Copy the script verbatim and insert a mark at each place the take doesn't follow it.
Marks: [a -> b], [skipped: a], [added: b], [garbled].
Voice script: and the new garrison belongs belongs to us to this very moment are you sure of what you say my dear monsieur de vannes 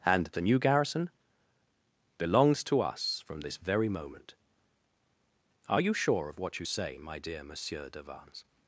and the new garrison belongs [skipped: belongs] to us [to -> from] this very moment are you sure of what you say my dear monsieur de vannes